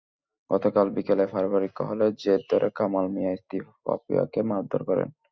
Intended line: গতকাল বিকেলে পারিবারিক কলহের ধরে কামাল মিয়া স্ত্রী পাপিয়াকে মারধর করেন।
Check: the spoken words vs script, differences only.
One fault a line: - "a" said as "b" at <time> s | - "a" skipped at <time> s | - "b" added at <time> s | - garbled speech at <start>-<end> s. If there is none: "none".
- "জের" added at 2.2 s